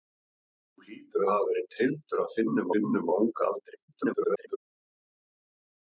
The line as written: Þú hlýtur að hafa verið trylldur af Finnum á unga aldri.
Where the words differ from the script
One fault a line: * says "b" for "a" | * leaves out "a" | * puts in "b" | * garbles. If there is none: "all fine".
* puts in "Finnum"
* garbles